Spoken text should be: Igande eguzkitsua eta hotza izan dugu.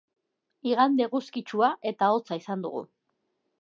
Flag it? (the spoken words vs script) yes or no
no